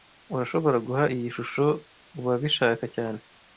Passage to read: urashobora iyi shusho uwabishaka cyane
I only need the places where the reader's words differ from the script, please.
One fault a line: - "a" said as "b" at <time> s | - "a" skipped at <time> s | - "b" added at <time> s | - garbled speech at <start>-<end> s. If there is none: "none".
- "guha" added at 0.9 s